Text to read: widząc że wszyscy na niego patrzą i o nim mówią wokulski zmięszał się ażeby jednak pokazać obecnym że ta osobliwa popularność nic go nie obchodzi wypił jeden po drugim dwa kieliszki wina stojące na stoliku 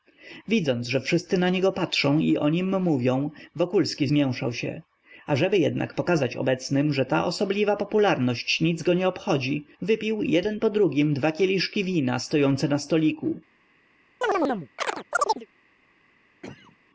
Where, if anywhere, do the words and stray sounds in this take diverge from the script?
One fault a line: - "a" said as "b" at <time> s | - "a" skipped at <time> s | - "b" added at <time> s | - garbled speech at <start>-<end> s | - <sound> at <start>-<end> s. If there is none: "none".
- chirp at 14.2-15.5 s
- cough at 16.4-16.8 s